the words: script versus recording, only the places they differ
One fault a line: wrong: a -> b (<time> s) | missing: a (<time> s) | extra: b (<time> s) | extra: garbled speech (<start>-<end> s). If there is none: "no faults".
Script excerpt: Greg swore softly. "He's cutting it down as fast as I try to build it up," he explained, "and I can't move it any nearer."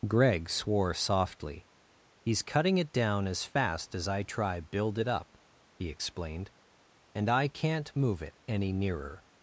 missing: to (4.6 s)